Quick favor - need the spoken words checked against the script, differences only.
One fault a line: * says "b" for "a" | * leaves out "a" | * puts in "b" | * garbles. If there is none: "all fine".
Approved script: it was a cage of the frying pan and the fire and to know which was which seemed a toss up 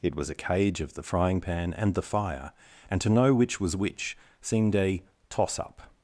all fine